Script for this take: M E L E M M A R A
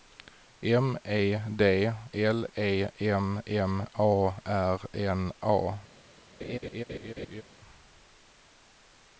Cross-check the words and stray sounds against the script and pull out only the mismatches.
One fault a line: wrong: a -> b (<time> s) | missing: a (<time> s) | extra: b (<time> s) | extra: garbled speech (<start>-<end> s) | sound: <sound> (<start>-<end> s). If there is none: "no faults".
extra: D (1.6 s)
extra: N (4.9 s)
sound: laugh (6.4-7.4 s)